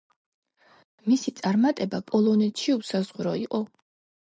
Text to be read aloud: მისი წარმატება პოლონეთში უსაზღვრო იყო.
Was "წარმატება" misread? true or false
false